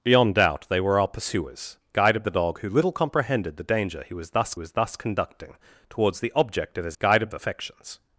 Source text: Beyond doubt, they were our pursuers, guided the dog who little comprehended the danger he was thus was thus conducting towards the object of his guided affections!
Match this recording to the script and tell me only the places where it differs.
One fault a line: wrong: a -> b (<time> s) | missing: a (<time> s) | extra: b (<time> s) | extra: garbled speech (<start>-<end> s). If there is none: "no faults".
no faults